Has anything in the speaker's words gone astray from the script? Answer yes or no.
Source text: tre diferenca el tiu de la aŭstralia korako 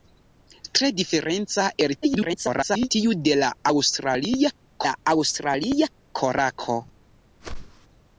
yes